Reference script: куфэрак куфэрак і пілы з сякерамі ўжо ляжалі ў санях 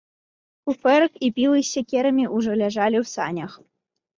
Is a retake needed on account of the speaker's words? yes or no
yes